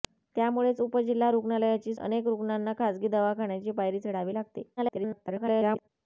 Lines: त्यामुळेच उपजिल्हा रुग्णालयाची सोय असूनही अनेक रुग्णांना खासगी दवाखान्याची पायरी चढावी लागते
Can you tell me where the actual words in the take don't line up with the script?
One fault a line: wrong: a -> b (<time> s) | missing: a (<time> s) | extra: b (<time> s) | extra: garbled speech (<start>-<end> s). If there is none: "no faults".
missing: सोय असूनही (1.9 s)
extra: garbled speech (4.8-5.9 s)